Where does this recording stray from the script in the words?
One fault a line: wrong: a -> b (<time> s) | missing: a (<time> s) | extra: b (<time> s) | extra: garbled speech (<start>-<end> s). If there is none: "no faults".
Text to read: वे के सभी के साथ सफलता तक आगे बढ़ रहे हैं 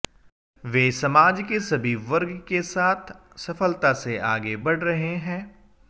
extra: समाज (0.9 s)
extra: वर्ग (2.1 s)
wrong: तक -> से (3.9 s)